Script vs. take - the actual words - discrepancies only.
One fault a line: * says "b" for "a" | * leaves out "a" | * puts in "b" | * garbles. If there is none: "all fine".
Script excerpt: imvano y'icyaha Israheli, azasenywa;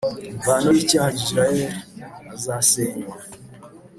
all fine